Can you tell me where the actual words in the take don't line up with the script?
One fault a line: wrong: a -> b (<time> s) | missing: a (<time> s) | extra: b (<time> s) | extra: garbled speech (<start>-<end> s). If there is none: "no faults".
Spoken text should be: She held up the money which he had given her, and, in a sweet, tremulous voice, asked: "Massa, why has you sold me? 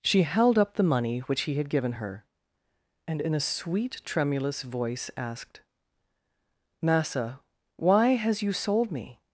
no faults